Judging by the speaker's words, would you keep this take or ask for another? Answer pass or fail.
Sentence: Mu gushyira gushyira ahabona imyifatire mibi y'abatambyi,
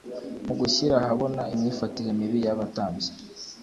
fail